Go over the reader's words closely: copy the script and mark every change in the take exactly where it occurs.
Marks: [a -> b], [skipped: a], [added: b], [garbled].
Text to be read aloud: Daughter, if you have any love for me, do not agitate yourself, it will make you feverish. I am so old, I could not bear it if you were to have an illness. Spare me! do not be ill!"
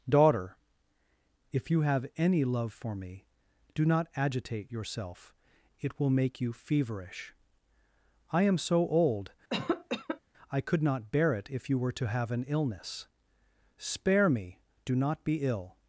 Daughter, if you have any love for me, do not agitate yourself, it will make you feverish. I am so old, I could not bear it if you were to have an illness. Spare me! do not be ill!"